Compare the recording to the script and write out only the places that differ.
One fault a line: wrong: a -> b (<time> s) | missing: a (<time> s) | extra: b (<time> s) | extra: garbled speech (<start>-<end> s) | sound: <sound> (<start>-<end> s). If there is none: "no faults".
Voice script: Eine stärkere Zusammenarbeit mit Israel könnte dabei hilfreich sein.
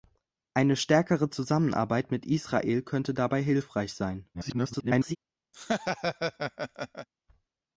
extra: garbled speech (4.3-5.2 s)
sound: laugh (5.5-7.1 s)